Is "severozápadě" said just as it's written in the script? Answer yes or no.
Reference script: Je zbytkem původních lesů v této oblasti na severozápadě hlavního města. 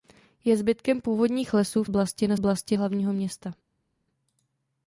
no